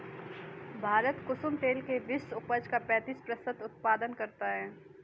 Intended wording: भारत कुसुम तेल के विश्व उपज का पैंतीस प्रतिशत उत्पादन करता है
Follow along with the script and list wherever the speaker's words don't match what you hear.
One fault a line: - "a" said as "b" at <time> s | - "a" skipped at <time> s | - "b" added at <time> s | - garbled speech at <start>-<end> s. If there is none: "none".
none